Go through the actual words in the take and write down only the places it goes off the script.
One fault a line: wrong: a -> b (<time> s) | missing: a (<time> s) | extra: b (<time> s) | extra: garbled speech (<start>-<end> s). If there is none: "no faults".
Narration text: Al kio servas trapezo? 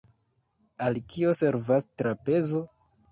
no faults